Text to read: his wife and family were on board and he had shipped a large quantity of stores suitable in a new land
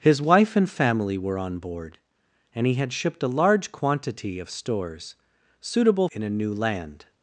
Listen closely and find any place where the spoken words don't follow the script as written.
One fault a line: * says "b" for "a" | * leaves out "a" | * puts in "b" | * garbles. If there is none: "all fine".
all fine